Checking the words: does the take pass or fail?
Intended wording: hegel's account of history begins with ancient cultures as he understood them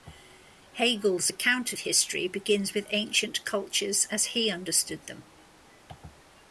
pass